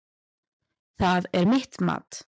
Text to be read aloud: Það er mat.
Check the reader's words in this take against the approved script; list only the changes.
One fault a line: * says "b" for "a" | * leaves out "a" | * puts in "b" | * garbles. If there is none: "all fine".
* puts in "mitt"